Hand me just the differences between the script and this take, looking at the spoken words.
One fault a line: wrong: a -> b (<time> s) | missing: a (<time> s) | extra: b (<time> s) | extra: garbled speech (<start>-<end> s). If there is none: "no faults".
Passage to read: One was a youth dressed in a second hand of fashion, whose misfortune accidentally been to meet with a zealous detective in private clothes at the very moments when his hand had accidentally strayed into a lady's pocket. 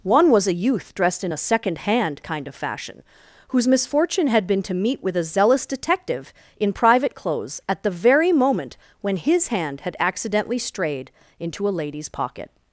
extra: kind (2.2 s)
wrong: accidentally -> had (4.3 s)
wrong: moments -> moment (8.3 s)